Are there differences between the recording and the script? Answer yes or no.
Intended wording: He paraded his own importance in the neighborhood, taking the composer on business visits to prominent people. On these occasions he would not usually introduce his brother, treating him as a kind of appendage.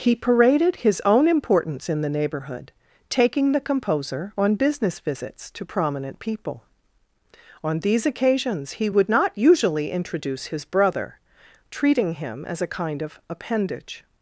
no